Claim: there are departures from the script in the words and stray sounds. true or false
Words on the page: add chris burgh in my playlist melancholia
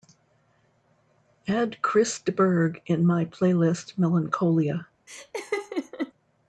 true